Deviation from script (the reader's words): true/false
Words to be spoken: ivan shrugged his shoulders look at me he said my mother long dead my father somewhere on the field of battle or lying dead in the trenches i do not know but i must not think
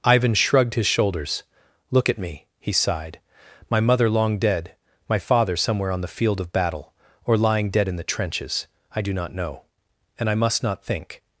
true